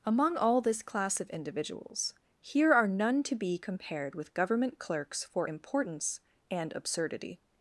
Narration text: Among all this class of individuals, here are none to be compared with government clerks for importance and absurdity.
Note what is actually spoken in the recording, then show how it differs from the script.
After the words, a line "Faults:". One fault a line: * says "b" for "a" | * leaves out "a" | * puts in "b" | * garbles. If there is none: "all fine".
Among all this class of individuals, here are none to be compared with government clerks for importance and absurdity.
Faults:
all fine